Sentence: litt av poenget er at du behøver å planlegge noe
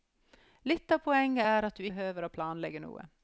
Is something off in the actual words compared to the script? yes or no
no